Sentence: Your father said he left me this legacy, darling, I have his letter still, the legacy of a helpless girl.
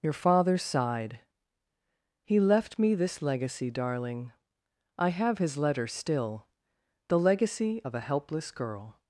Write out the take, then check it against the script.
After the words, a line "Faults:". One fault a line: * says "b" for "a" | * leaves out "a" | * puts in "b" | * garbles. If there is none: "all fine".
Your father sighed he left me this legacy, darling, I have his letter still, the legacy of a helpless girl.
Faults:
* says "sighed" for "said"